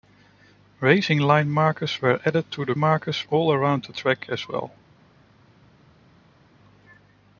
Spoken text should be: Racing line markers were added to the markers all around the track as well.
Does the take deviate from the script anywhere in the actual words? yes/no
no